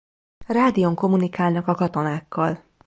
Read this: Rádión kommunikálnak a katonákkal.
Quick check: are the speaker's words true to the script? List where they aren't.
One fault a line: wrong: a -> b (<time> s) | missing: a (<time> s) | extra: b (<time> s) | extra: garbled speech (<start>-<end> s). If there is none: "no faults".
no faults